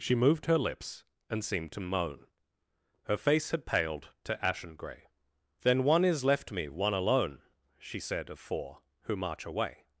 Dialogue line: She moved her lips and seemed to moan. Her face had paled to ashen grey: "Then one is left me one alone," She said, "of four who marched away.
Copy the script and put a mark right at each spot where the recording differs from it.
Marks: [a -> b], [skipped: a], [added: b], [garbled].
She moved her lips and seemed to moan. Her face had paled to ashen grey: "Then one is left me one alone," She said, "of four who [marched -> march] away.